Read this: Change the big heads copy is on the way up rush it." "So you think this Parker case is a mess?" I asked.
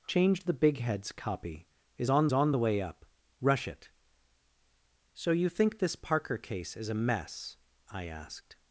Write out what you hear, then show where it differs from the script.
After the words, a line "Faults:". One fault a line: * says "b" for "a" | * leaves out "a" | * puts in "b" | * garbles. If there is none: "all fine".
Change the big heads copy is on on the way up rush it." "So you think this Parker case is a mess?" I asked.
Faults:
* puts in "on"